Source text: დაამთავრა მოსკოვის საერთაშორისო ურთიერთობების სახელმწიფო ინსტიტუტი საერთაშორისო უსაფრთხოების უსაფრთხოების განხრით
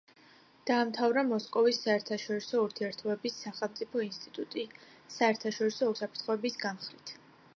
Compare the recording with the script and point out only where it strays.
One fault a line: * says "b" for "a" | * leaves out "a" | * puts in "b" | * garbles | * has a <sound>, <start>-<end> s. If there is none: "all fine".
* leaves out "უსაფრთხოების"